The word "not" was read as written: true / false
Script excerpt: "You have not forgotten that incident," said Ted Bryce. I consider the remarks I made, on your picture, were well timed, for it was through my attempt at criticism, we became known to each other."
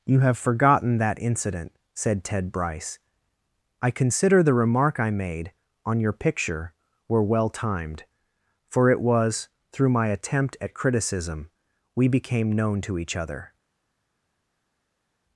false